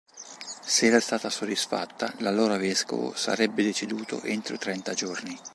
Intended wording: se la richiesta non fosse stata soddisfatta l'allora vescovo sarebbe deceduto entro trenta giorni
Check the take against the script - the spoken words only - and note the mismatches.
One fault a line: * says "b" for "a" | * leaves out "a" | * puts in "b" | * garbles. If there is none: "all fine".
* leaves out "richiesta non fosse"